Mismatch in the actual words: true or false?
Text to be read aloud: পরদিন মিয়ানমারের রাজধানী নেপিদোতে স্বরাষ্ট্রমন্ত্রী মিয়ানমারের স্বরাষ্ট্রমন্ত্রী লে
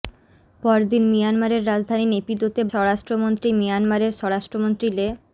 false